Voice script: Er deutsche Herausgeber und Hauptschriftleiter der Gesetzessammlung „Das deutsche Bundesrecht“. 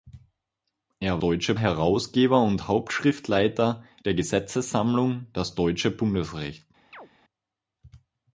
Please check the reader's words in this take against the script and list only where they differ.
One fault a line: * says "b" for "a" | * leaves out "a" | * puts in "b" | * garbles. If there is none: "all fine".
all fine